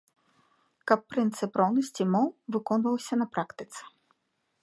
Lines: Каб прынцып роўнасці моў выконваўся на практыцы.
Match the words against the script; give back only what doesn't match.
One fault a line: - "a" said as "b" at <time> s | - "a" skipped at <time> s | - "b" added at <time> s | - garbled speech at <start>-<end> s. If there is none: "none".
none